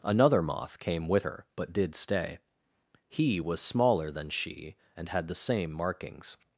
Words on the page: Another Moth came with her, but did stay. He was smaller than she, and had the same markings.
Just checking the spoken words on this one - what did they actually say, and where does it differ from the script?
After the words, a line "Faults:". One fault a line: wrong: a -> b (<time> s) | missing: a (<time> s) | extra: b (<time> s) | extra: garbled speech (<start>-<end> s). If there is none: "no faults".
Another Moth came with her, but did stay. He was smaller than she, and had the same markings.
Faults:
no faults